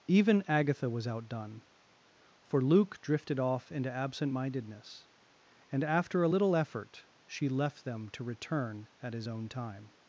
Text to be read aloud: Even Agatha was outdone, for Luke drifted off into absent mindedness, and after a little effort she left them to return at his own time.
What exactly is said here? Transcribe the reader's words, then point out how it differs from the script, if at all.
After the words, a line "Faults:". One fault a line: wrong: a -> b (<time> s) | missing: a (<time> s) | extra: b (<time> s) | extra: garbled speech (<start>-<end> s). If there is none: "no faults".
Even Agatha was outdone, for Luke drifted off into absent mindedness, and after a little effort she left them to return at his own time.
Faults:
no faults